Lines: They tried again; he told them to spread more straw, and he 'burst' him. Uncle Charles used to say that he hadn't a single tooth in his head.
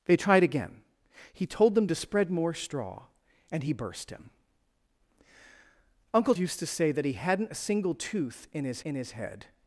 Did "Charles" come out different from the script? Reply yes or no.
yes